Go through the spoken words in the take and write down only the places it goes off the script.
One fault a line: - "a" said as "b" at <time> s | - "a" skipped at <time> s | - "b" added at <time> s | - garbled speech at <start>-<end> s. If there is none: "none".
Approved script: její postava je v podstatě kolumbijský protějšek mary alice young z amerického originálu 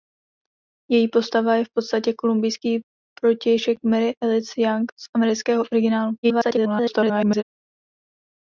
- garbled speech at 6.2-7.4 s